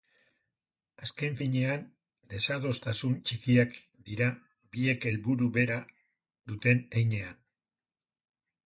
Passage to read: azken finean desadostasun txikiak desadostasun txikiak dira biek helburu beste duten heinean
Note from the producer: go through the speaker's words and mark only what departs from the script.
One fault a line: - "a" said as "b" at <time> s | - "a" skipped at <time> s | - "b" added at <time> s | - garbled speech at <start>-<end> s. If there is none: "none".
- "desadostasun txikiak" skipped at 3.7 s
- "beste" said as "bera" at 5.6 s